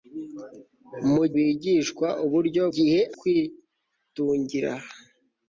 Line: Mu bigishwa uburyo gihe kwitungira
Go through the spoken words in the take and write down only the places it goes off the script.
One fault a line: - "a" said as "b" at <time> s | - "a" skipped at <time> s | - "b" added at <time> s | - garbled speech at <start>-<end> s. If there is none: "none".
none